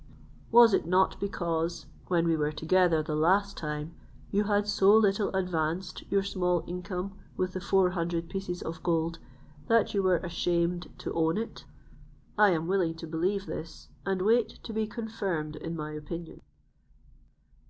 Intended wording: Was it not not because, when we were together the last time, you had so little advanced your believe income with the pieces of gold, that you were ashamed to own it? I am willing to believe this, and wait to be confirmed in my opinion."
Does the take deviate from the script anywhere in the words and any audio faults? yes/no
yes